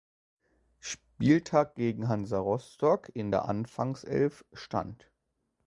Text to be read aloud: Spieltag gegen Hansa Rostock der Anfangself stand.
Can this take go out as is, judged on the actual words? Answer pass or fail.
fail